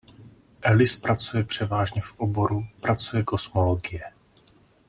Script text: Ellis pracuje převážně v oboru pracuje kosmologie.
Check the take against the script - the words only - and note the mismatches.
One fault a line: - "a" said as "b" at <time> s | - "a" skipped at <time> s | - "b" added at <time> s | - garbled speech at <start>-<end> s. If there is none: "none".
none